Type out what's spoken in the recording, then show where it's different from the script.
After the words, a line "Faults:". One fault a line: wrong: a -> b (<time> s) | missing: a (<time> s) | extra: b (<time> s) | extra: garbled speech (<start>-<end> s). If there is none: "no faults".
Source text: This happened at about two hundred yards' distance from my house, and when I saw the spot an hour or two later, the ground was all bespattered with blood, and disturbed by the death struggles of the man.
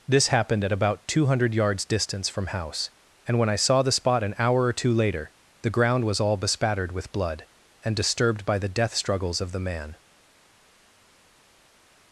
This happened at about two hundred yards' distance from house, and when I saw the spot an hour or two later, the ground was all bespattered with blood, and disturbed by the death struggles of the man.
Faults:
missing: my (2.5 s)